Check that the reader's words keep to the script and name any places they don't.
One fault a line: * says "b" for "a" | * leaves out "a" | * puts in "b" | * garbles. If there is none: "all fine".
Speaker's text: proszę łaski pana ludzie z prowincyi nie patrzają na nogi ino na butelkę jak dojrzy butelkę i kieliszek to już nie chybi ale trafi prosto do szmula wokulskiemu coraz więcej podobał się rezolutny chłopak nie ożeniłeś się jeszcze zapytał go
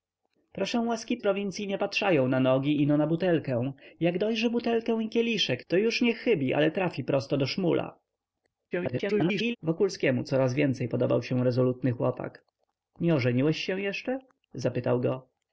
* leaves out "pana ludzie"
* garbles